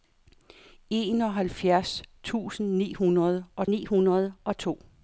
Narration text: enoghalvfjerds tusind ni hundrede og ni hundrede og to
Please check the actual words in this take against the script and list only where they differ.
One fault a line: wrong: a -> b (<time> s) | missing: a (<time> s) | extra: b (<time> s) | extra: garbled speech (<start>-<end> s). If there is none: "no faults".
no faults